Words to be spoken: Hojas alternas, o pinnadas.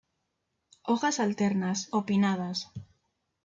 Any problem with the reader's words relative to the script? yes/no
no